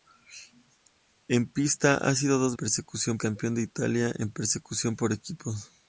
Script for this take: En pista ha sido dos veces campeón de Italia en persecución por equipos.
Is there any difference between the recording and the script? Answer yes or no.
yes